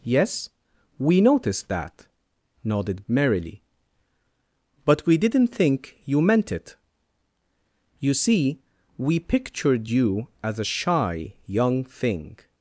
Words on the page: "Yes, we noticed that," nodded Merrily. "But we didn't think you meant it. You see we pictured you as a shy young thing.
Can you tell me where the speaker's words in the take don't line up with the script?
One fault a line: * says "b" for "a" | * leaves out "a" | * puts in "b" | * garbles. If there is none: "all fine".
all fine